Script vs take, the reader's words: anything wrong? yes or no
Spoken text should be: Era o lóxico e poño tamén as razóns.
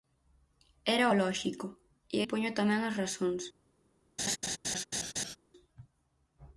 no